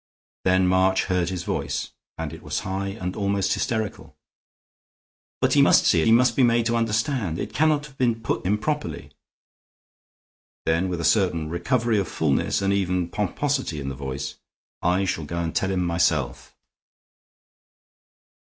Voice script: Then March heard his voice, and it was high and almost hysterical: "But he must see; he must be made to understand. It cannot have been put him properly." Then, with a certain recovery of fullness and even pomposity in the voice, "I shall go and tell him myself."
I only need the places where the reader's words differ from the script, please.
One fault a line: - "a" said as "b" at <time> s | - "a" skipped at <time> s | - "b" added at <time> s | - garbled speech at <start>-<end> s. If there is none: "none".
none